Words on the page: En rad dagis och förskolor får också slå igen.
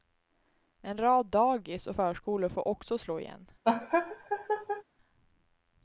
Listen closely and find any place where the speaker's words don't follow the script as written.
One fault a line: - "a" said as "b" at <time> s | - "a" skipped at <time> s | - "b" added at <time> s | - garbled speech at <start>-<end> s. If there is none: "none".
none